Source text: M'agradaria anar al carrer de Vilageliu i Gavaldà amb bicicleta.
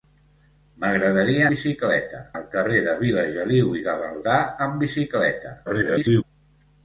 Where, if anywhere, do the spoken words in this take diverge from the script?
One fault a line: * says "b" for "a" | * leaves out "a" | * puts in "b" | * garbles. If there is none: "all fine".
* says "bicicleta" for "anar"
* garbles